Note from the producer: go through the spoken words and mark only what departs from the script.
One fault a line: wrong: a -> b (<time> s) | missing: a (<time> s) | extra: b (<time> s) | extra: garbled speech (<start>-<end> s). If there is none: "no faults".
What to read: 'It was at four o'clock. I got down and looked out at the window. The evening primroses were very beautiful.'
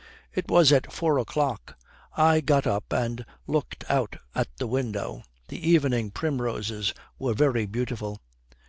wrong: down -> up (2.6 s)